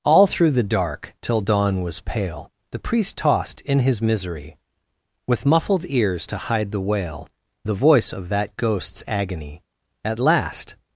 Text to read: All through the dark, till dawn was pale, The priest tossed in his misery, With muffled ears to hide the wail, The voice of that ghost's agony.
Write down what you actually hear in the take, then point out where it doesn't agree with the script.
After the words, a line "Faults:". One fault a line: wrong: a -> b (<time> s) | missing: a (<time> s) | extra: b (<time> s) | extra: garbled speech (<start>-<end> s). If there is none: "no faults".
All through the dark, till dawn was pale, The priest tossed in his misery, With muffled ears to hide the wail, The voice of that ghost's agony. At last
Faults:
extra: At last (10.0 s)